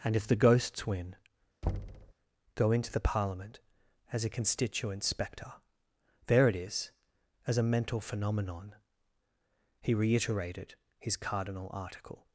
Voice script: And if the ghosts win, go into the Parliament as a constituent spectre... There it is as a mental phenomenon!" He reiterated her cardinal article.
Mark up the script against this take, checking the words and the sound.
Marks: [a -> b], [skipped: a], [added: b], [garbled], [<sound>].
And if the ghosts win, [thud] go into the Parliament as a constituent spectre... There it is as a mental phenomenon!" He reiterated [her -> his] cardinal article.